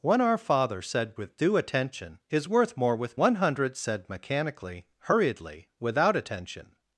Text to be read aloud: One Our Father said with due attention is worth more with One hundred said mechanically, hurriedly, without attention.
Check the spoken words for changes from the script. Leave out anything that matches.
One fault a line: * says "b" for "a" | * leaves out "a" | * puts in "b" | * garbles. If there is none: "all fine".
all fine